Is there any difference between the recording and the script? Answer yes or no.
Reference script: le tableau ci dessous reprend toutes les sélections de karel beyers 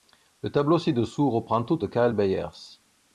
yes